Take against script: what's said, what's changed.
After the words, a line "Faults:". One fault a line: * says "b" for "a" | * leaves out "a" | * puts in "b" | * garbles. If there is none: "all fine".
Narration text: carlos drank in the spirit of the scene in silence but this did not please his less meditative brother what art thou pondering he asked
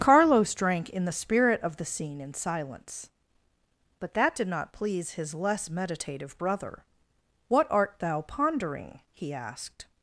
carlos drank in the spirit of the scene in silence but that did not please his less meditative brother what art thou pondering he asked
Faults:
* says "that" for "this"